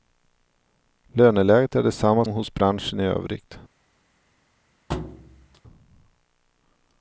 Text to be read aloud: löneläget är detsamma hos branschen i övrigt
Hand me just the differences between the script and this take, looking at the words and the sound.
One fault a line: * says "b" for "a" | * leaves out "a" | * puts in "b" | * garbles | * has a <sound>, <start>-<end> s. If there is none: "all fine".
* has a thud, 4.9-5.6 s